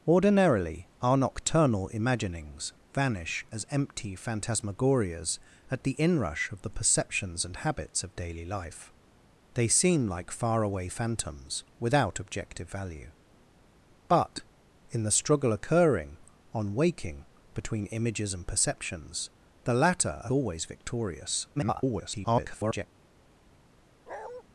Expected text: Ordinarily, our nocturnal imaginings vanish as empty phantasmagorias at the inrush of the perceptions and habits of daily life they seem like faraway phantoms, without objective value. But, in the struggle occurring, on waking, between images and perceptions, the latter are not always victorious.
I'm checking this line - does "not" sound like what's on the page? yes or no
no